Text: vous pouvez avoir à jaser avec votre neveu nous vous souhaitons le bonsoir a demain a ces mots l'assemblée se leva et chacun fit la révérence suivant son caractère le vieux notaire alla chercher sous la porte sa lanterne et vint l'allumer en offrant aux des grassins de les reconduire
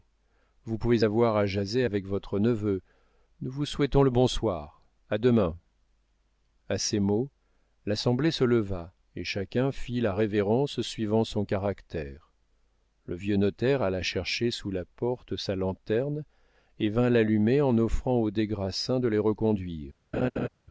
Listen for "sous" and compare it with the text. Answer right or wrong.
right